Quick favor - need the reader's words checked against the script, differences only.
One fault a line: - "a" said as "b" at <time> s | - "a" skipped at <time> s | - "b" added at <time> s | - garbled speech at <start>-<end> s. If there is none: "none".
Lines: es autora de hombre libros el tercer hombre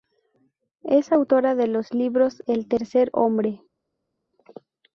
- "hombre" said as "los" at 1.7 s